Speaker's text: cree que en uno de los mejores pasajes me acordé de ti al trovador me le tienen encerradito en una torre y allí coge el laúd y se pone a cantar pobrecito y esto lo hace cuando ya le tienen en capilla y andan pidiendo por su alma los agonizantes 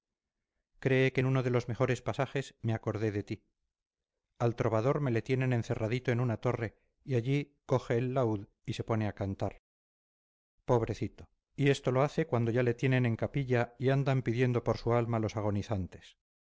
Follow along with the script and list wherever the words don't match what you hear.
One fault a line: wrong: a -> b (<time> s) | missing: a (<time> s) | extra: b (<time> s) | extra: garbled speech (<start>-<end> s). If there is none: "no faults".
no faults